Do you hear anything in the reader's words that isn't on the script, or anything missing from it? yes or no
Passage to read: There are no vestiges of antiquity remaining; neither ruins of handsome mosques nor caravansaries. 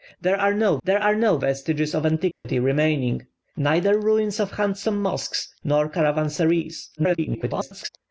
yes